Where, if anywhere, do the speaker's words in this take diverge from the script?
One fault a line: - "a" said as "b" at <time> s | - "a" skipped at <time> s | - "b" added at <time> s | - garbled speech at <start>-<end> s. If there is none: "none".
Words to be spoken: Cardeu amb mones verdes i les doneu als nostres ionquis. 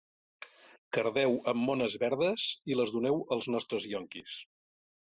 none